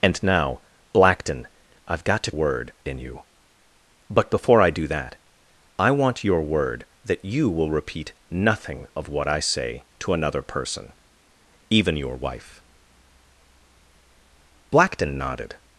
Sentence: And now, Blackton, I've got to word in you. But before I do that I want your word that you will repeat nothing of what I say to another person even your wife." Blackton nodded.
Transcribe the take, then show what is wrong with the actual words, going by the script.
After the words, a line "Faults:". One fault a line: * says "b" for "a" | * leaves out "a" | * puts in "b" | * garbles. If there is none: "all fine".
And now, Blackton, I've got to word in you. But before I do that I want your word that you will repeat nothing of what I say to another person even your wife." Blackton nodded.
Faults:
all fine